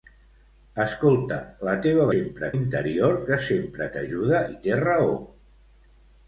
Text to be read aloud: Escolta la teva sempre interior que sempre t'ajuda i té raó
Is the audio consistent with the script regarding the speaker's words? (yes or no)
yes